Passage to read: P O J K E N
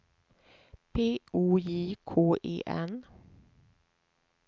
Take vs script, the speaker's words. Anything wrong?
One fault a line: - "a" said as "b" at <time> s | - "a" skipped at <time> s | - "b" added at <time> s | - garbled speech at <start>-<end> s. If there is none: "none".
none